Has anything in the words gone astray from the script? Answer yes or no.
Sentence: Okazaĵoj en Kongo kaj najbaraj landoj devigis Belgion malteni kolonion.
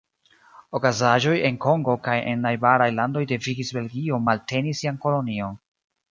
yes